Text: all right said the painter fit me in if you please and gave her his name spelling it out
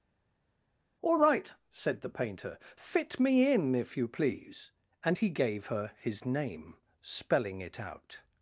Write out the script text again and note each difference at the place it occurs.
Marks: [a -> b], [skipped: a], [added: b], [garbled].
all right said the painter fit me in if you please and [added: he] gave her his name spelling it out